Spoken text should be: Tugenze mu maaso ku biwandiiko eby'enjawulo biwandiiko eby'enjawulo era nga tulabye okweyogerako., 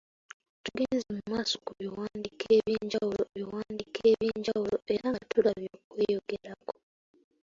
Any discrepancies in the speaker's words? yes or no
no